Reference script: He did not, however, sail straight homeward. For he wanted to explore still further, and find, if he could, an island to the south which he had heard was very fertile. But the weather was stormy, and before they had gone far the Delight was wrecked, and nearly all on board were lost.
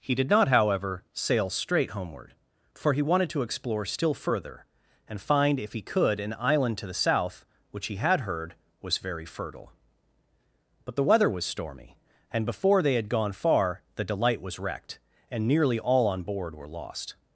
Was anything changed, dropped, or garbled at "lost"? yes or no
no